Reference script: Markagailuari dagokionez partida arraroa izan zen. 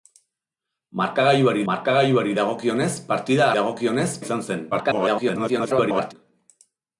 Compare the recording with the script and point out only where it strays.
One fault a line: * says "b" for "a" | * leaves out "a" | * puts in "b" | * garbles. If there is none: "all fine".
* puts in "markagailuari"
* says "dagokionez" for "arraroa"
* garbles